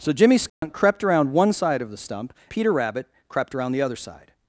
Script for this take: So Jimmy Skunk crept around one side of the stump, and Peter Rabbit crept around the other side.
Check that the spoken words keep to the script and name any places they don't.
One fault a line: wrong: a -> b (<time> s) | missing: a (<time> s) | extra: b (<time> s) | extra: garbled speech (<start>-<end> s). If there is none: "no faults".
missing: and (2.3 s)